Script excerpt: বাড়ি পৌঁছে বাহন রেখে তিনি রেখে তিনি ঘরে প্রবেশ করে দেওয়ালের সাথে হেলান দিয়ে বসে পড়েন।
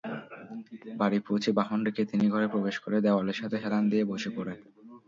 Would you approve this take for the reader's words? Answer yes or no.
no